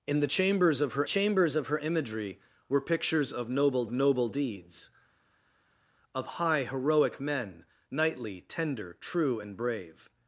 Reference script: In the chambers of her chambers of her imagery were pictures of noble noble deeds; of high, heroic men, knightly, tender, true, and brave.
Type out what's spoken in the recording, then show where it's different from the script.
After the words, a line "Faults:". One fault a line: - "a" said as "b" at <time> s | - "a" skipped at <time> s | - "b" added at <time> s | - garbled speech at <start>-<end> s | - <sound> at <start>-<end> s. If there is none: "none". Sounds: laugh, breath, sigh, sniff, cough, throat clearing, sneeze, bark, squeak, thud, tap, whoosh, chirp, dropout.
In the chambers of her chambers of her imagery were pictures of noble noble deeds; of high, heroic men, knightly, tender, true, and brave.
Faults:
none